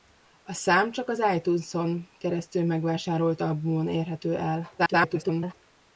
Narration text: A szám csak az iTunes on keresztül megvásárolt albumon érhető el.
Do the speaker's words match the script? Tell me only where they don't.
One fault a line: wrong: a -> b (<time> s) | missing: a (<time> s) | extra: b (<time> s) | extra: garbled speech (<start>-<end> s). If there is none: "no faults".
extra: garbled speech (4.8-5.5 s)